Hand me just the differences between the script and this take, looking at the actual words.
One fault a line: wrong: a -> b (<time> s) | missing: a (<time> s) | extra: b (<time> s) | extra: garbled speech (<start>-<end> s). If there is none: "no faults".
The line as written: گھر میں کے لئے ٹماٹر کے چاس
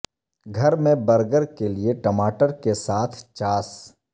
extra: برگر (1.1 s)
extra: ساتھ (2.8 s)